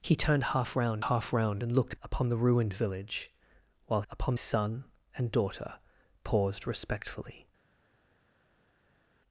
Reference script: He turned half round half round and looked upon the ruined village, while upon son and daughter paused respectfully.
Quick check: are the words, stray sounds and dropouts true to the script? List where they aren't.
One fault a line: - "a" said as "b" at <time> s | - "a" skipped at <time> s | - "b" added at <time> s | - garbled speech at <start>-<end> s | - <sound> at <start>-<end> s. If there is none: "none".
none